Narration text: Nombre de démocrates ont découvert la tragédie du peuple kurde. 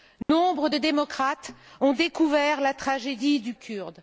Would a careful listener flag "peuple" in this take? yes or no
yes